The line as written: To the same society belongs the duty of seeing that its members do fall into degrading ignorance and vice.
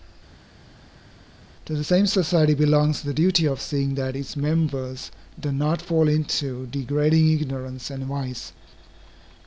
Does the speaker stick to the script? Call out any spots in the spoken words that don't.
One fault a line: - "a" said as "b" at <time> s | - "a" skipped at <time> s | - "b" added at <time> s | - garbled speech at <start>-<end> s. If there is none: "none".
- "not" added at 5.5 s